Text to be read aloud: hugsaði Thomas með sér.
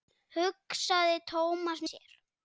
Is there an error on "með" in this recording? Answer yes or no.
yes